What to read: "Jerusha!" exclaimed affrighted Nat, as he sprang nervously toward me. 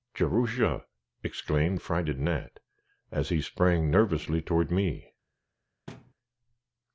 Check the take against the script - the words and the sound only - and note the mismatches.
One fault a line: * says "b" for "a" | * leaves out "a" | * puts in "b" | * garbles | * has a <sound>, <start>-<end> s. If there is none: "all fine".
* has a thud, 5.9-6.1 s